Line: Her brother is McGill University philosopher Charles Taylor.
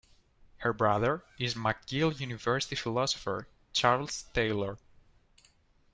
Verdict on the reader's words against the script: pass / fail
pass